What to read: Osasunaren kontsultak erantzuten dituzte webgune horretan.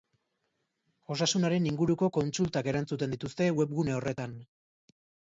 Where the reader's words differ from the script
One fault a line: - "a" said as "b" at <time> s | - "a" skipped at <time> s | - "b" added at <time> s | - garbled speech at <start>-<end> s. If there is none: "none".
- "inguruko" added at 1.7 s